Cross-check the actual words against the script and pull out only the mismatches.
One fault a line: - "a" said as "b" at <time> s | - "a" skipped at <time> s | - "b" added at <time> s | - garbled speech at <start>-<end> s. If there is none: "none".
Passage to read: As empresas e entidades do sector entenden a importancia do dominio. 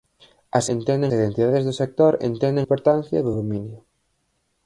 - "empresas" said as "entenden" at 0.8 s
- "a" skipped at 2.7 s